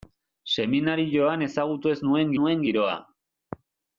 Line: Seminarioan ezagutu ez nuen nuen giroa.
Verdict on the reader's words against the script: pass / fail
pass